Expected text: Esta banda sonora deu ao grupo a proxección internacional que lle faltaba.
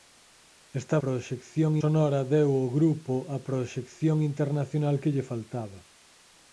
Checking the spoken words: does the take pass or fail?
fail